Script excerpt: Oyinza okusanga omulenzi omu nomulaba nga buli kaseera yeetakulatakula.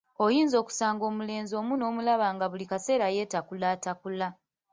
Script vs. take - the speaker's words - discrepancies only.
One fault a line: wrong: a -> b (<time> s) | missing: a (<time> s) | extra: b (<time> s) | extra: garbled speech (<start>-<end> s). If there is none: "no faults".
no faults